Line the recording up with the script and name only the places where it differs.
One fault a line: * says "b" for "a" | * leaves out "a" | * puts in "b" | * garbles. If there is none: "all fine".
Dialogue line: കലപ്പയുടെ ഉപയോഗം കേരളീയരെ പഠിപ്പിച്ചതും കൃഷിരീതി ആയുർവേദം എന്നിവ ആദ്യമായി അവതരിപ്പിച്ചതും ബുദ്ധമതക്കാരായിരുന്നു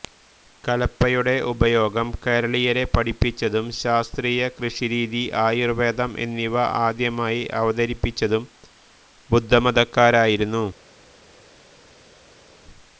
* puts in "ശാസ്ത്രീയ"